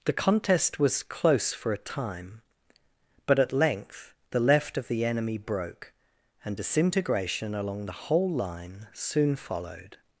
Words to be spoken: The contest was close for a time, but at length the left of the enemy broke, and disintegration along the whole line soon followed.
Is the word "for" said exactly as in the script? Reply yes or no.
yes